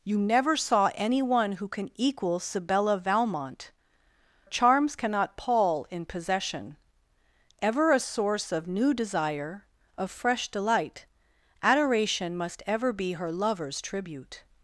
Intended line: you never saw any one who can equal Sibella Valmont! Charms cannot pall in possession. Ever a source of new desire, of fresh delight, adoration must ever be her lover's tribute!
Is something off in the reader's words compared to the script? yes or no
no